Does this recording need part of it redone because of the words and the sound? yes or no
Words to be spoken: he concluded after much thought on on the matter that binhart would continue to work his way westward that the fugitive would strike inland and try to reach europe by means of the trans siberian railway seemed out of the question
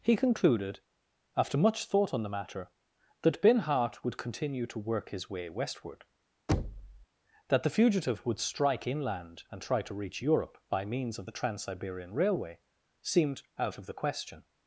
yes